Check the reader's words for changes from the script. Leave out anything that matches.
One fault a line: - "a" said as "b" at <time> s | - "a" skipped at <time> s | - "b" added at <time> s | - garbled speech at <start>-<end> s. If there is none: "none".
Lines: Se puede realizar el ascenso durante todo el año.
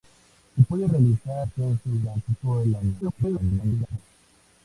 - "el" skipped at 1.5 s
- garbled speech at 3.0-4.0 s